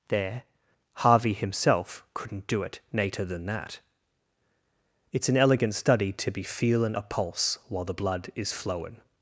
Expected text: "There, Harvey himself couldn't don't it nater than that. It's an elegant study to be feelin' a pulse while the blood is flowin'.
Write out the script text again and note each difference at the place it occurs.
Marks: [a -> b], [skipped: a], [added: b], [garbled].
"There, Harvey himself couldn't [don't -> do] it nater than that. It's an elegant study to be feelin' a pulse while the blood is flowin'.